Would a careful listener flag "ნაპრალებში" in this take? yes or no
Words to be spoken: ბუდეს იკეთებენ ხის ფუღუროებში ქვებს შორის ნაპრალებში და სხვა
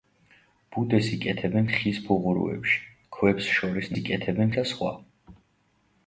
yes